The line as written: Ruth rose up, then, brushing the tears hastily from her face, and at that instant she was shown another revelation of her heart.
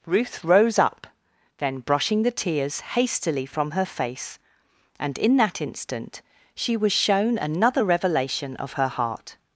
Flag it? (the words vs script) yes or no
yes